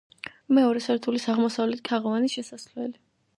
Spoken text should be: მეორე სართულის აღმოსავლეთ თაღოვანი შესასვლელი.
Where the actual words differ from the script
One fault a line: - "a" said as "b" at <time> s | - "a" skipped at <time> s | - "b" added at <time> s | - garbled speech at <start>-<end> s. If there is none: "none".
none